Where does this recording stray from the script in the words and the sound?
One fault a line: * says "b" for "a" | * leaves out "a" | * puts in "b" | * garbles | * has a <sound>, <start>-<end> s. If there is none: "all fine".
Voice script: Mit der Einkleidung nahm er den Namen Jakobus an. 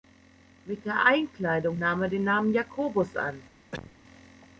* has a cough, 3.7-4.0 s